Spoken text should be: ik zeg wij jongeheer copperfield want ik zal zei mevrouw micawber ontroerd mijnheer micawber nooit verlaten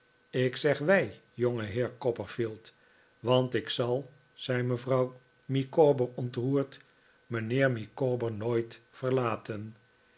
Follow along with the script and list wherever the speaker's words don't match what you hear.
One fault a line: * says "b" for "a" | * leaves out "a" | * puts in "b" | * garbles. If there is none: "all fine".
all fine